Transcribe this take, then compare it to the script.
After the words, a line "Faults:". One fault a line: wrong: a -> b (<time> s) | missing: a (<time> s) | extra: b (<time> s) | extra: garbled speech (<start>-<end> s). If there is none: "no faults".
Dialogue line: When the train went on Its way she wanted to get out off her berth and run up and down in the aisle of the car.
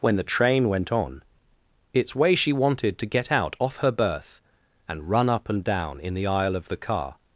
When the train went on Its way she wanted to get out off her berth and run up and down in the aisle of the car.
Faults:
no faults